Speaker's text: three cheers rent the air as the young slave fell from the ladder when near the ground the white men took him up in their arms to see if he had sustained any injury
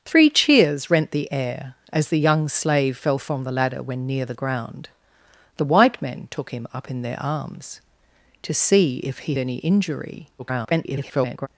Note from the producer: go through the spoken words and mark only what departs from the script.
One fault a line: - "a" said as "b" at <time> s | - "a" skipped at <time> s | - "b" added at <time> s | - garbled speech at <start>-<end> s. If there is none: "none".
- "had sustained" skipped at 9.3 s
- garbled speech at 10.4-11.5 s